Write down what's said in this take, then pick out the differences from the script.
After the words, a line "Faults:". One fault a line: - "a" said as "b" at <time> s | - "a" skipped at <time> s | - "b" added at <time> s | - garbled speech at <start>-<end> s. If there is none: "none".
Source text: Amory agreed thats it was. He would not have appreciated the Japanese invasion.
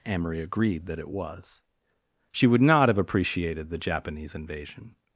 Amory agreed that it was. She would not have appreciated the Japanese invasion.
Faults:
- "thats" said as "that" at 0.8 s
- "He" said as "She" at 2.3 s